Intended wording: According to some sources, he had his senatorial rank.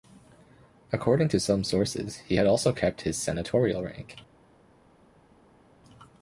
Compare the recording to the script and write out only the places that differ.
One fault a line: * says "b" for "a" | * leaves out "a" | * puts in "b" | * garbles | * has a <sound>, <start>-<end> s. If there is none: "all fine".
* puts in "also kept"